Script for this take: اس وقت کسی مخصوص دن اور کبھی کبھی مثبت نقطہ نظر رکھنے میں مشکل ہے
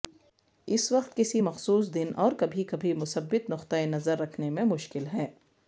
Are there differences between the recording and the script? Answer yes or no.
no